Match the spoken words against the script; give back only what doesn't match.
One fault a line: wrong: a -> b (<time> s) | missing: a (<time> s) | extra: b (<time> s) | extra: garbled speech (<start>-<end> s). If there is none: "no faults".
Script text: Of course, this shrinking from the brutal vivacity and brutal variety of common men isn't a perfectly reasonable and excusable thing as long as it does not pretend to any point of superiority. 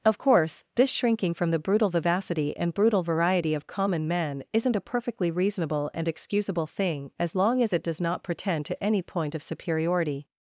no faults